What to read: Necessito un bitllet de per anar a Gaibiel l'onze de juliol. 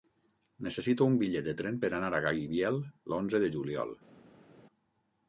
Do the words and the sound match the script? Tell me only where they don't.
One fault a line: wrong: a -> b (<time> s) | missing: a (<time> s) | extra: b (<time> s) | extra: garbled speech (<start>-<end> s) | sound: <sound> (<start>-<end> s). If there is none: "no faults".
extra: tren (1.6 s)